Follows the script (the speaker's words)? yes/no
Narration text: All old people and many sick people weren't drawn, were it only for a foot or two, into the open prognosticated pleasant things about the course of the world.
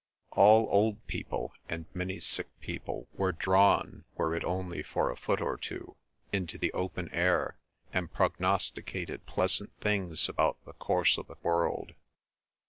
no